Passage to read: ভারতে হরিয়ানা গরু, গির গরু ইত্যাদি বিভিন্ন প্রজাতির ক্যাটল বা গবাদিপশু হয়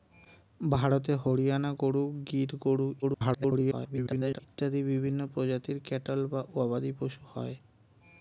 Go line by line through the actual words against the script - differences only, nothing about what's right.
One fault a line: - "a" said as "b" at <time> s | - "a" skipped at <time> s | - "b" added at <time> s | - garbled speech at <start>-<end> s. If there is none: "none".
- garbled speech at 3.0-4.4 s